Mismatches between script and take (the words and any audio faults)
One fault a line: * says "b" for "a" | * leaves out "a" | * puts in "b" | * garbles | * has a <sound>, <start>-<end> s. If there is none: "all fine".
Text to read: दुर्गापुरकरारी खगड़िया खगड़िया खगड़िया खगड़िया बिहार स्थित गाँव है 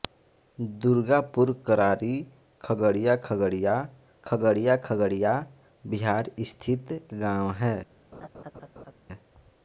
* has a laugh, 8.1-8.9 s